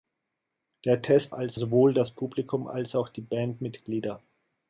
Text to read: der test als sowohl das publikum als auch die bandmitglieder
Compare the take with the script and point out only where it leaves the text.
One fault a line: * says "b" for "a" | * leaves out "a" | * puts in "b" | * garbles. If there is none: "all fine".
all fine